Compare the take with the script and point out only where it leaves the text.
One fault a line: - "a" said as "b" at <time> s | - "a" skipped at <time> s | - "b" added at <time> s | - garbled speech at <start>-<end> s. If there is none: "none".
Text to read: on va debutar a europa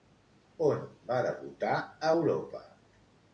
none